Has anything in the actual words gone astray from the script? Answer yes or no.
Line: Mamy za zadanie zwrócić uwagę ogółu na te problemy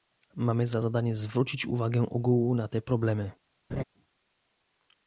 no